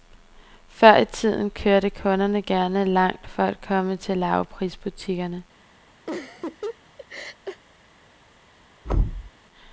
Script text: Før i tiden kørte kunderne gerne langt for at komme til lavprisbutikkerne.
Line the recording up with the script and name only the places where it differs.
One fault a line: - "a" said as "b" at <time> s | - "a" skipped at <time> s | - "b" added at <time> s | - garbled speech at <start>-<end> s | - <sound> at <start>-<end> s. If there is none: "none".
- laugh at 6.1-7.6 s
- thud at 8.8-9.3 s